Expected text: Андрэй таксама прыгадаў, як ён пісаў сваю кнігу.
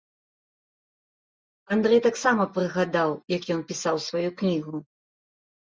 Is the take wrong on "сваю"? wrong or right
right